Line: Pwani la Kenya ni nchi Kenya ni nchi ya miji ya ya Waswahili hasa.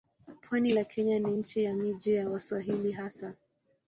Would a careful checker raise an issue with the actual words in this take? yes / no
yes